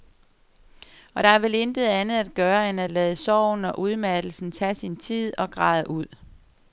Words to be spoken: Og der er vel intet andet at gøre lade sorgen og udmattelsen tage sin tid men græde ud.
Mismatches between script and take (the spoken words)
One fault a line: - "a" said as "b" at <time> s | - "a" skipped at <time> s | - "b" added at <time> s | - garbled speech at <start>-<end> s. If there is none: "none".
- "end at" added at 2.7 s
- "men" said as "og" at 5.4 s